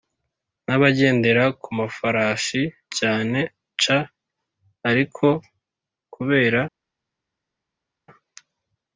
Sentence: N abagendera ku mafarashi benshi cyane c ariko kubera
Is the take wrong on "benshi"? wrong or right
wrong